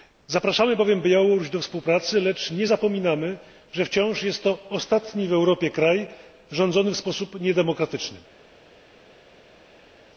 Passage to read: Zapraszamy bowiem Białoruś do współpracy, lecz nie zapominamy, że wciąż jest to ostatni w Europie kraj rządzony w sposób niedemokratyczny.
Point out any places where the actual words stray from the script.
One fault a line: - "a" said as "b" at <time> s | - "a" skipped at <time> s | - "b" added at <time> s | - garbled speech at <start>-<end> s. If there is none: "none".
none